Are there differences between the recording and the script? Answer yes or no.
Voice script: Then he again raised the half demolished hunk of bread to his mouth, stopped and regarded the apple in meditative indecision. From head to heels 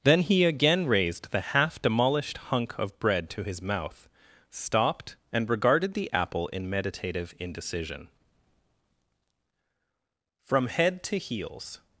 no